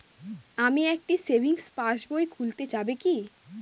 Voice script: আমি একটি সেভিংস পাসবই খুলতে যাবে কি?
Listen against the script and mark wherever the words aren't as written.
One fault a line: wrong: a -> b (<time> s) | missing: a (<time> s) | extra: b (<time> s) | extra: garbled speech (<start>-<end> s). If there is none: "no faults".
no faults